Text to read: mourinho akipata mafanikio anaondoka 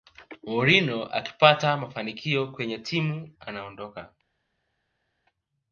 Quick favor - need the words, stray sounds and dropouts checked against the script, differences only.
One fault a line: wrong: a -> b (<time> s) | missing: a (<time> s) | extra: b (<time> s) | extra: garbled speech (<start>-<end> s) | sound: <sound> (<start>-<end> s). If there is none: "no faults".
extra: kwenye timu (2.5 s)